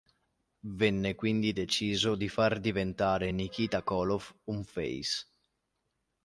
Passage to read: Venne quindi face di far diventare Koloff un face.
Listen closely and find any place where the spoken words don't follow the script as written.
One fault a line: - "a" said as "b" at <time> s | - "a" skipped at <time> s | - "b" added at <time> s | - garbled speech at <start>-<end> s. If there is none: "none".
- "face" said as "deciso" at 1.5 s
- "Nikita" added at 3.3 s